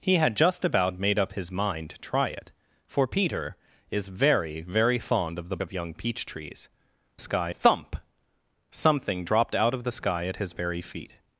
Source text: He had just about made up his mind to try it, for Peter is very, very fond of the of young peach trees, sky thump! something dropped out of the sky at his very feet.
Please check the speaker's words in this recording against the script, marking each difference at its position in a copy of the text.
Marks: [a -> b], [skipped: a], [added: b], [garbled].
He had just about made up his mind to try it, for Peter is very, very fond of the of young peach trees, sky thump! something dropped out of the sky at his very feet.